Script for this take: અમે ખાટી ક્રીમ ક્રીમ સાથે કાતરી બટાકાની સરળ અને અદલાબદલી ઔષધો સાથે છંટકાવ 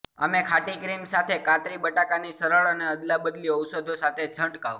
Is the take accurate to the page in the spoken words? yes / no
no